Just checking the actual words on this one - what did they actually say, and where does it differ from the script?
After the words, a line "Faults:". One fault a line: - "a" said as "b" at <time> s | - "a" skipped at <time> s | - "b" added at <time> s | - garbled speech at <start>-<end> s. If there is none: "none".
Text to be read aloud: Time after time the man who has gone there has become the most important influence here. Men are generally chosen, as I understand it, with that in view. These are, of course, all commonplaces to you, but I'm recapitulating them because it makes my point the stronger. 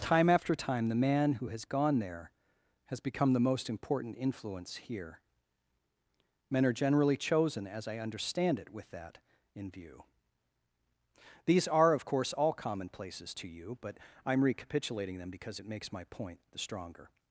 Time after time the man who has gone there has become the most important influence here. Men are generally chosen, as I understand it, with that in view. These are, of course, all commonplaces to you, but I'm recapitulating them because it makes my point the stronger.
Faults:
none